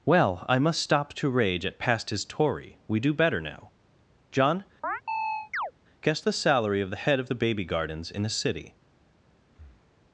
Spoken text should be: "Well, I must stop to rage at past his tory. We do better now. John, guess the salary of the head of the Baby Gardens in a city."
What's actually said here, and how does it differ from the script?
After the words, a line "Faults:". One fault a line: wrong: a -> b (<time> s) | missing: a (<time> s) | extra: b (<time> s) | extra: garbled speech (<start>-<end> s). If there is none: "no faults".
"Well, I must stop to rage at past his tory. We do better now. John, guess the salary of the head of the Baby Gardens in a city."
Faults:
no faults